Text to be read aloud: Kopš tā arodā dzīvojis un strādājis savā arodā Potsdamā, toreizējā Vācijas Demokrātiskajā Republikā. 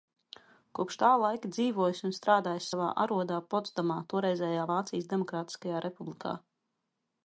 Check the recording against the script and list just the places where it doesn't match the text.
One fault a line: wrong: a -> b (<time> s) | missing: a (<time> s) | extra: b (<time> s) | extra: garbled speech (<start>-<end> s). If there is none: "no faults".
wrong: arodā -> laika (1.2 s)